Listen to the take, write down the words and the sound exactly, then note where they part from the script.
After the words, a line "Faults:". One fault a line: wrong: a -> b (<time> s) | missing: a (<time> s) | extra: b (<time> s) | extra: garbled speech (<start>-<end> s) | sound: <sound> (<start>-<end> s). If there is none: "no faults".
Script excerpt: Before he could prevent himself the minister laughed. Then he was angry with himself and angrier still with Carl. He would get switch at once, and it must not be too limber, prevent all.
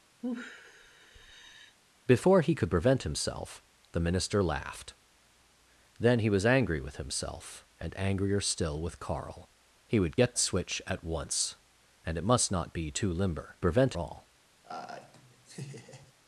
Before he could prevent himself the minister laughed. Then he was angry with himself and angrier still with Carl. He would get switch at once, and it must not be too limber, prevent all.
Faults:
sound: sigh (0.2-1.8 s)
sound: laugh (14.6-16.1 s)